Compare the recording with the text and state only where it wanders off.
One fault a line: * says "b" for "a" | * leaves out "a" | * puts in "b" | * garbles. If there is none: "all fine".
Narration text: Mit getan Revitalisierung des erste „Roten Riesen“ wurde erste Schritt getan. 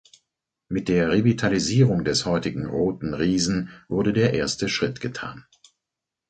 * says "der" for "getan"
* says "heutigen" for "erste"
* puts in "der"